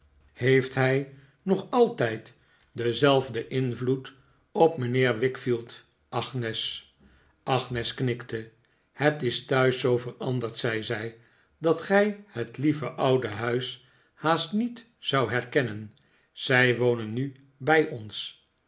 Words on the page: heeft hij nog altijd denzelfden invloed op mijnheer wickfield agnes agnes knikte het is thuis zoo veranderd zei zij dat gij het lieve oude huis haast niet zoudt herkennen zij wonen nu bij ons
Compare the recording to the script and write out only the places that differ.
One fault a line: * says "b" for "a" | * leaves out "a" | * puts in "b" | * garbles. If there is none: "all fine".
all fine